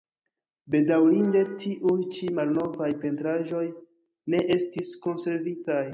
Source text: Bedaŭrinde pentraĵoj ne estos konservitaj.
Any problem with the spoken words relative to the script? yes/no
yes